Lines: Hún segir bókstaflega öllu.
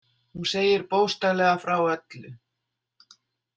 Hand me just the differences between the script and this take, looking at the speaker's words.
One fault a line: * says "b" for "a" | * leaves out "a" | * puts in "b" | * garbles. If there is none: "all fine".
* puts in "frá"